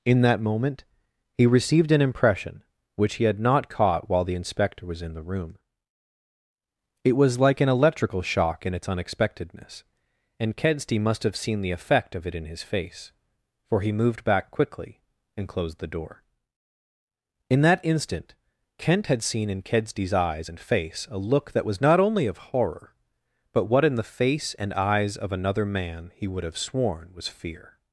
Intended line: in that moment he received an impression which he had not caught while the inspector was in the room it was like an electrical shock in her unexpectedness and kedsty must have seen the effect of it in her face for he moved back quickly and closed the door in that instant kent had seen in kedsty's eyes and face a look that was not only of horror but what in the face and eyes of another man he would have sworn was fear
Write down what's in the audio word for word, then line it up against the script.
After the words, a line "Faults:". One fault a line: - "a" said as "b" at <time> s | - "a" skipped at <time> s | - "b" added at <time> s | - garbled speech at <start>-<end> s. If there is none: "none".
in that moment he received an impression which he had not caught while the inspector was in the room it was like an electrical shock in its unexpectedness and kedsty must have seen the effect of it in his face for he moved back quickly and closed the door in that instant kent had seen in kedsty's eyes and face a look that was not only of horror but what in the face and eyes of another man he would have sworn was fear
Faults:
- "her" said as "its" at 8.7 s
- "her" said as "his" at 12.4 s